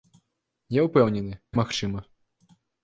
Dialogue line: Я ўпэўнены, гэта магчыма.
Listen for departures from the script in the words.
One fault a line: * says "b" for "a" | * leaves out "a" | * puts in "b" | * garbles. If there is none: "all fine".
* leaves out "гэта"